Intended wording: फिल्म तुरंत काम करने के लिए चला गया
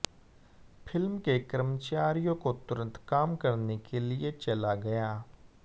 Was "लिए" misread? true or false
false